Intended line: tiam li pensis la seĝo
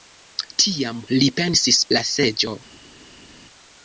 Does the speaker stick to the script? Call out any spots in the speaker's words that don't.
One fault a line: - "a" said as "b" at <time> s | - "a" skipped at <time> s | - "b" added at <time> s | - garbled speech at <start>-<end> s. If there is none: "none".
none